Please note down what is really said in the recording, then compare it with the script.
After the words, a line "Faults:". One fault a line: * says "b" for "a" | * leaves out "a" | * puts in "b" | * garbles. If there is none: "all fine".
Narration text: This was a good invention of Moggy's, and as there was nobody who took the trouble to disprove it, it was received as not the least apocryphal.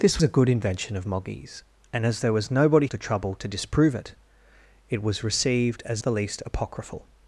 This a good invention of Moggy's, and as there was nobody the trouble to disprove it, it was received as the least apocryphal.
Faults:
* leaves out "was"
* leaves out "who took"
* leaves out "not"